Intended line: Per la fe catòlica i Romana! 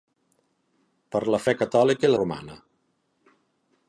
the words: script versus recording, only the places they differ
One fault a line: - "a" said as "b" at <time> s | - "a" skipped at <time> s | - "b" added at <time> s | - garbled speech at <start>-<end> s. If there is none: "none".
none